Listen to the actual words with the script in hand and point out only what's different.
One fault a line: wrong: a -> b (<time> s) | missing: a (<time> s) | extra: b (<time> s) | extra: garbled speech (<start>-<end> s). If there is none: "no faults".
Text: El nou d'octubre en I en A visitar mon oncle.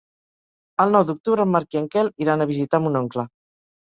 extra: Marc (1.6 s)
extra: Quel iran (2.0 s)